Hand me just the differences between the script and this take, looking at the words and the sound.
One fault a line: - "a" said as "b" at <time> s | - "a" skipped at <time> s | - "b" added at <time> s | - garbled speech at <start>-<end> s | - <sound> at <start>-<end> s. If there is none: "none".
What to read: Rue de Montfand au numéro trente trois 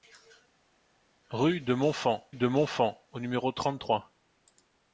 - "de Montfand" added at 2.3 s